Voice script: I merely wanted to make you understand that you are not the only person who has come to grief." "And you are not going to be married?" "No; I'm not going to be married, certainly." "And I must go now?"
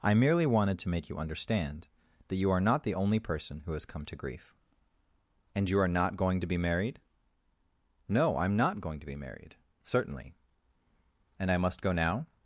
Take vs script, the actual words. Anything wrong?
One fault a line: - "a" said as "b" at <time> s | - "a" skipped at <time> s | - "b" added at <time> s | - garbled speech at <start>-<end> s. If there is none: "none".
none